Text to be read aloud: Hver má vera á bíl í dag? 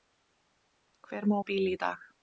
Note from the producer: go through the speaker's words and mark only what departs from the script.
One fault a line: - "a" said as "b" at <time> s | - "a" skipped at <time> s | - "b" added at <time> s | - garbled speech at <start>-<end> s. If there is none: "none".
- "vera" skipped at 1.4 s